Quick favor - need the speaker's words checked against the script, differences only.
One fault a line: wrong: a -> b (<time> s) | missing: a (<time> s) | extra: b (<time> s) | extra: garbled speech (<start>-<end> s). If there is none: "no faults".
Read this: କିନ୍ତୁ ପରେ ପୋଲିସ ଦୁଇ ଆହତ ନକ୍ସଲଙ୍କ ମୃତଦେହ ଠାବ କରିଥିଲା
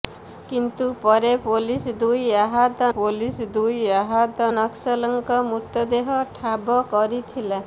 extra: ପୋଲିସ ଦୁଇ ଆହତ (2.9 s)